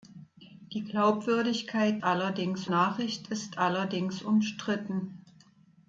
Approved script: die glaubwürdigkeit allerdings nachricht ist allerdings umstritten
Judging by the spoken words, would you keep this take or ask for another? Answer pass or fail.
pass